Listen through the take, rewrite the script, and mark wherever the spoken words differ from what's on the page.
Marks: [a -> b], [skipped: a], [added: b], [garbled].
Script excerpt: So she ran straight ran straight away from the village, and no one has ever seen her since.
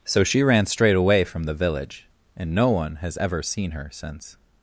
So she ran straight [skipped: ran straight] away from the village, and no one has ever seen her since.